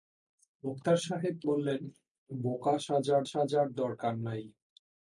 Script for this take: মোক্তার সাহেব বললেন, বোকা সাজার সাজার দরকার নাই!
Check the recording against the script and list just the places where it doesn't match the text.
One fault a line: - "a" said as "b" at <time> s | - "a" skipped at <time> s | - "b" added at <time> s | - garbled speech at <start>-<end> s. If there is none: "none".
none